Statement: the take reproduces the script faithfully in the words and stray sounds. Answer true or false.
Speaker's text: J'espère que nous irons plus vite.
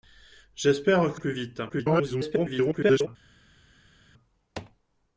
false